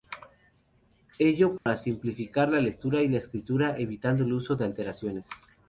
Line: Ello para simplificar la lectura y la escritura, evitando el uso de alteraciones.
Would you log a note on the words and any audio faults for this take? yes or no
yes